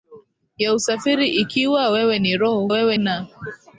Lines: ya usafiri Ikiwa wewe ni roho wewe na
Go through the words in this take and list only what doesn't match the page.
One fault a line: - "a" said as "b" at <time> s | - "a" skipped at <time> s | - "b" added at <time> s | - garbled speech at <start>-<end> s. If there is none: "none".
none